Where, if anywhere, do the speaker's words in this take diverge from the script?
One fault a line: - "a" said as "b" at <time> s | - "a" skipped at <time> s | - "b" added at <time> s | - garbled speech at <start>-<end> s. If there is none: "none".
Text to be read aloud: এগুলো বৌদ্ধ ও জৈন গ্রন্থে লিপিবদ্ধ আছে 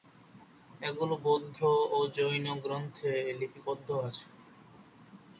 none